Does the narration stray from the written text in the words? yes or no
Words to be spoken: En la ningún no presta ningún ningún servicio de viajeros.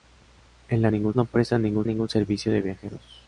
no